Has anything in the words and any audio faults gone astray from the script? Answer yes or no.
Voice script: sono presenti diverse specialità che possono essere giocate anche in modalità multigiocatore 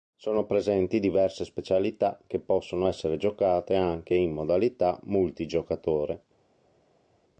no